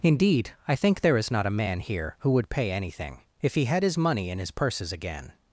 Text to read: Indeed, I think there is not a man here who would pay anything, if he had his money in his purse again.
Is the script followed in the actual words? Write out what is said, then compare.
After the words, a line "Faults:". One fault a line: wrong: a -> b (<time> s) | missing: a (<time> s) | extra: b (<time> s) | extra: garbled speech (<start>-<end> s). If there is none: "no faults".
Indeed, I think there is not a man here who would pay anything, if he had his money in his purses again.
Faults:
wrong: purse -> purses (4.5 s)